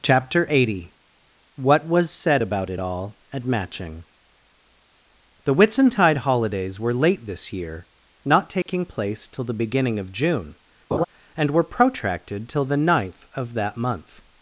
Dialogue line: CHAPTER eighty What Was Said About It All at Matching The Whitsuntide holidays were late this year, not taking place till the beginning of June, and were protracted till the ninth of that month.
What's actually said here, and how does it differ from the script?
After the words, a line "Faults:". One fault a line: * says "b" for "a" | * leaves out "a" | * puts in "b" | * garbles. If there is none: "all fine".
CHAPTER eighty What Was Said About It All at Matching The Whitsuntide holidays were late this year, not taking place till the beginning of June, and were protracted till the ninth of that month.
Faults:
all fine